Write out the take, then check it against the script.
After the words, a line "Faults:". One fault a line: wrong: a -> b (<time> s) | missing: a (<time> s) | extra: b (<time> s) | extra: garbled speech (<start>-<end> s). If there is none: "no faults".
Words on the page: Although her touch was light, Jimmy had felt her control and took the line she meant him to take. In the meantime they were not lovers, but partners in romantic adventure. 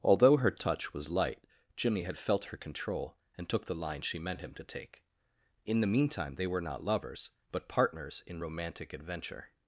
Although her touch was light, Jimmy had felt her control and took the line she meant him to take. In the meantime they were not lovers, but partners in romantic adventure.
Faults:
no faults